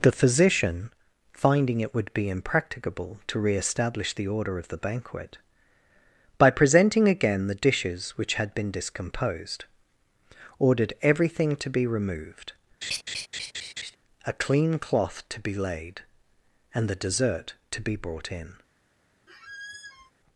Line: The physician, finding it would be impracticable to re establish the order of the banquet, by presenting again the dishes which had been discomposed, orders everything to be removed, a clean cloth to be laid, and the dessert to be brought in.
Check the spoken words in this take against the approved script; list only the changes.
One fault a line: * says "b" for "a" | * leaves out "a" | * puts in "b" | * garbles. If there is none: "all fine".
* says "ordered" for "orders"